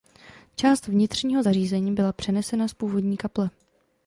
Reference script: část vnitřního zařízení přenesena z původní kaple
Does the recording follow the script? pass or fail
fail